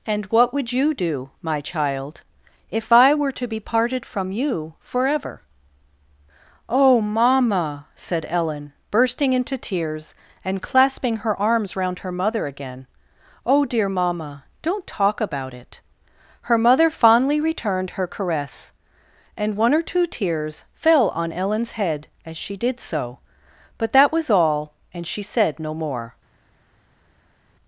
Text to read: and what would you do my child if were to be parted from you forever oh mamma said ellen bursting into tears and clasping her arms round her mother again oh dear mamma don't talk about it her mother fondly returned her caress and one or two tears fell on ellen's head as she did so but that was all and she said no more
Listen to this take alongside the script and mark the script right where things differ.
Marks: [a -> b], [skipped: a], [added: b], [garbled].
and what would you do my child if [added: i] were to be parted from you forever oh mamma said ellen bursting into tears and clasping her arms round her mother again oh dear mamma don't talk about it her mother fondly returned her caress and one or two tears fell on ellen's head as she did so but that was all and she said no more